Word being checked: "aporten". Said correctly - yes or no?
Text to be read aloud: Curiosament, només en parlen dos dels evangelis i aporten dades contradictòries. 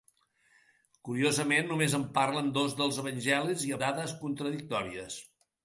no